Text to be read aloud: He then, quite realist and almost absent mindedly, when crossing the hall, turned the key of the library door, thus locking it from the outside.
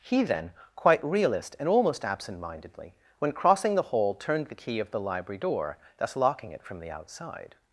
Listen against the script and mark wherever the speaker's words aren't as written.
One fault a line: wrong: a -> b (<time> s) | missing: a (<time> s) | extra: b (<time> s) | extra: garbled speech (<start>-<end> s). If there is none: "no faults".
no faults